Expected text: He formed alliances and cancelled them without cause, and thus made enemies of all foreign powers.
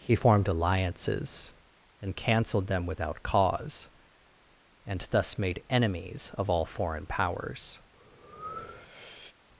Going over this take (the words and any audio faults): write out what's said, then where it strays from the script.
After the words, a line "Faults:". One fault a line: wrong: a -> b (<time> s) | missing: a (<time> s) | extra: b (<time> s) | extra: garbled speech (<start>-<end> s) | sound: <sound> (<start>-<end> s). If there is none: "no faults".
He formed alliances and cancelled them without cause, and thus made enemies of all foreign powers.
Faults:
sound: breath (7.9-9.4 s)